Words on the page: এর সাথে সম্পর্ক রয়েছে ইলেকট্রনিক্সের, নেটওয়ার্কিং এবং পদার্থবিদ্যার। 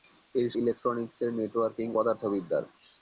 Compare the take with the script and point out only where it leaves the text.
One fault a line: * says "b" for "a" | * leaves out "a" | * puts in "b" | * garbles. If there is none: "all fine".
* leaves out "সাথে সম্পর্ক রয়েছে"
* leaves out "এবং"